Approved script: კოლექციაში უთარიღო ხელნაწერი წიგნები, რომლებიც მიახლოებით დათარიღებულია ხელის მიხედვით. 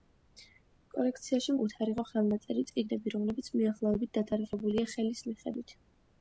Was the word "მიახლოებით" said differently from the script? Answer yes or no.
no